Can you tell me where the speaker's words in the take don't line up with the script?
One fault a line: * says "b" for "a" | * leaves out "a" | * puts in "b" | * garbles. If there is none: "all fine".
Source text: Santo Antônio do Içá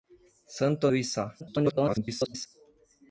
* leaves out "Antônio"
* garbles